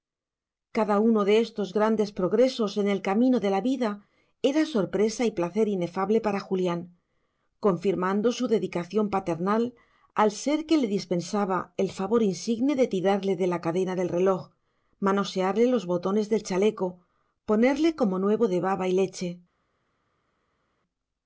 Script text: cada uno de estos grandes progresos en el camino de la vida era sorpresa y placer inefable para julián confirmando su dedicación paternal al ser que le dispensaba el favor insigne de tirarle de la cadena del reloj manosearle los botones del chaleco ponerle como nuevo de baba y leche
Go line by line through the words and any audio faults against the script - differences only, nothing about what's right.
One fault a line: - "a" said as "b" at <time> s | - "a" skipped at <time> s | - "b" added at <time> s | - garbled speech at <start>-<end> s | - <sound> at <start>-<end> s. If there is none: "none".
none